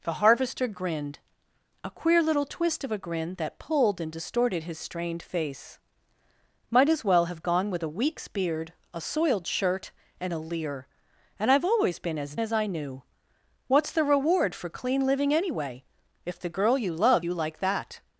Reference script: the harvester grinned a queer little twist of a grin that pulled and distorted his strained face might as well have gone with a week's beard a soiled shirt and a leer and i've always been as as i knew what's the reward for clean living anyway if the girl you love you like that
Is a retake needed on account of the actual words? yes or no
no